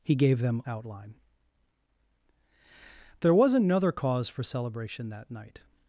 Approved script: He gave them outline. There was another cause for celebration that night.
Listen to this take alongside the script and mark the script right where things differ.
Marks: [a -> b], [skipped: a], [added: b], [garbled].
He gave them outline. There was another cause for celebration that night.